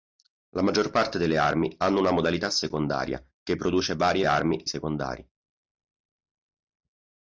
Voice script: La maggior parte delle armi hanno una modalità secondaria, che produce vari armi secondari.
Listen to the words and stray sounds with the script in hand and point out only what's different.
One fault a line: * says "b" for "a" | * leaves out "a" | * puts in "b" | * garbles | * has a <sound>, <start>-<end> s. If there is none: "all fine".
all fine